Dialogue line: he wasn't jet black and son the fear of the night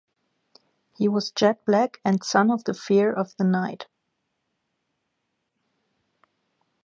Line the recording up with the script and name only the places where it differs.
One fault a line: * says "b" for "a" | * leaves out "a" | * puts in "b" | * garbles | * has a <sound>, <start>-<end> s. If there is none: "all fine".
* says "was" for "wasn't"
* puts in "of"